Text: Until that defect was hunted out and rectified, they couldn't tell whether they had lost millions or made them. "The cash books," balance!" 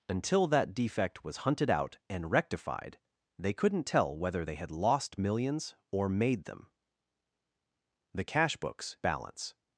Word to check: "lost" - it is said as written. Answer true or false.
true